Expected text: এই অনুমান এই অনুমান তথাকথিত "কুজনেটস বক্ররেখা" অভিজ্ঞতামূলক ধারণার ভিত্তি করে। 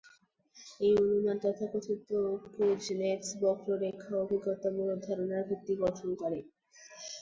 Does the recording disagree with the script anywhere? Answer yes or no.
yes